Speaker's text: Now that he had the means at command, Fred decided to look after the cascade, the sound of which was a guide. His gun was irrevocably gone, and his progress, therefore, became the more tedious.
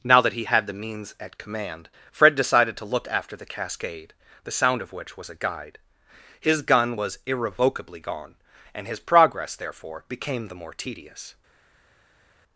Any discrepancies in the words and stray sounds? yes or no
no